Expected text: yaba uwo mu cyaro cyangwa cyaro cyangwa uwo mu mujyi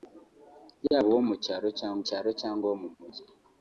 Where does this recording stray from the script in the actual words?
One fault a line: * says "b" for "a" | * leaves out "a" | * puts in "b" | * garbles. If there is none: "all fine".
all fine